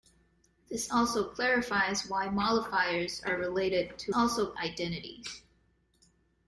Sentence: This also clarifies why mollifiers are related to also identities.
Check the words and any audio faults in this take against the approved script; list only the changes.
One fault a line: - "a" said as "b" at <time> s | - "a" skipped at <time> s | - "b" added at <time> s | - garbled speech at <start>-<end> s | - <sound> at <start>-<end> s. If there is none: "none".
none